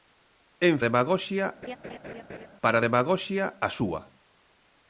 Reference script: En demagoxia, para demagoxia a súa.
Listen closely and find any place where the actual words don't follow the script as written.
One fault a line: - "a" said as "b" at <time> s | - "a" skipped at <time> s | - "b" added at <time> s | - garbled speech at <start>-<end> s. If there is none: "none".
none